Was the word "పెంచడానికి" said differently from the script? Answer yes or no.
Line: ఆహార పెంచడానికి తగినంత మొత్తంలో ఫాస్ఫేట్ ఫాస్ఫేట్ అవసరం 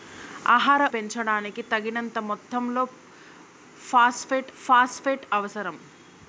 no